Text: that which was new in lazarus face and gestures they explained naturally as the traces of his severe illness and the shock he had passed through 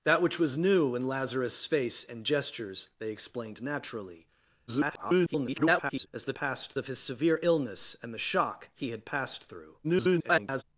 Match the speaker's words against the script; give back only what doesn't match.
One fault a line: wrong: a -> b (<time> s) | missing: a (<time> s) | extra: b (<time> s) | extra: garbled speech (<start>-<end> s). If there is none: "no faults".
extra: garbled speech (4.7-6.1 s)
wrong: traces -> passed (6.3 s)
extra: garbled speech (9.8-10.6 s)